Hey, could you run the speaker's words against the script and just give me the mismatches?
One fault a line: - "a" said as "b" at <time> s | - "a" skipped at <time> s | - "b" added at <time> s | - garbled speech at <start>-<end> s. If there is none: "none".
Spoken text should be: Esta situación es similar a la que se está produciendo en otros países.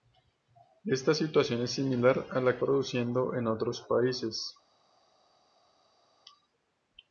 - "que se está" skipped at 2.6 s